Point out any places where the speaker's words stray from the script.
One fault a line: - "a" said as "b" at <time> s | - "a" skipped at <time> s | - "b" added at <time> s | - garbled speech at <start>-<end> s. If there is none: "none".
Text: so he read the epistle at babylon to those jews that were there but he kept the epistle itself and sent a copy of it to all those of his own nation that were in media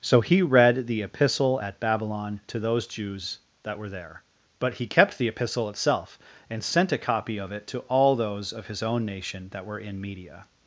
none